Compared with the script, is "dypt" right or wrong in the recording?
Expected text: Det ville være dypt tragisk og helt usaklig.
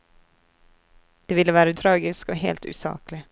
wrong